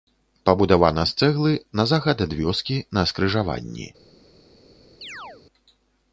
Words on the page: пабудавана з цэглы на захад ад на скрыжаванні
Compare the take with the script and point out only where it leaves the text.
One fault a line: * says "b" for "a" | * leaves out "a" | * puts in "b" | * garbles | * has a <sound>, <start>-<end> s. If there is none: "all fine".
* puts in "вёскі"
* has a chirp, 5.0-5.4 s